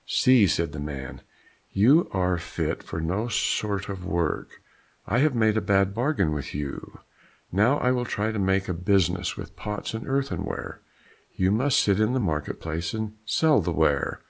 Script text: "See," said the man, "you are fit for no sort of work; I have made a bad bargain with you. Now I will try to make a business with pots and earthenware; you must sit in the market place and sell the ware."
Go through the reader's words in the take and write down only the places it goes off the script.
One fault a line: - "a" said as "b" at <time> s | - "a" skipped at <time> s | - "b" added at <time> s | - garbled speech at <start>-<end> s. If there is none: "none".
none